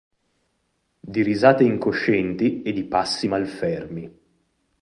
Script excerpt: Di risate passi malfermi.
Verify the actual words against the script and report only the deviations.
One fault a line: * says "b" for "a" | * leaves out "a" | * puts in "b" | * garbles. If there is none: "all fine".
* puts in "incoscienti e di"